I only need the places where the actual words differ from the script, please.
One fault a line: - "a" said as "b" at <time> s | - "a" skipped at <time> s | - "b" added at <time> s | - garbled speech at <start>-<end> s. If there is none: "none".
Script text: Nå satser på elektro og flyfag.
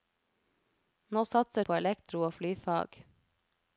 none